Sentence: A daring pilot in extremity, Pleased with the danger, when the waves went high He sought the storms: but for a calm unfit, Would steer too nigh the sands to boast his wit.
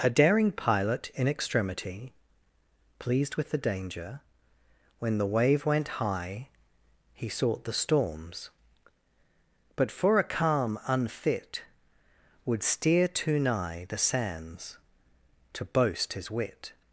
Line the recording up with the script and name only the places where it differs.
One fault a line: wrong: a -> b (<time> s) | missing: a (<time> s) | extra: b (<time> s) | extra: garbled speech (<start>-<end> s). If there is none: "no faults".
wrong: waves -> wave (5.3 s)